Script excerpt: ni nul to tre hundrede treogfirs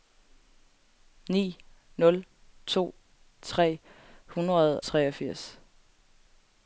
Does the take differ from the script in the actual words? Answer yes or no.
no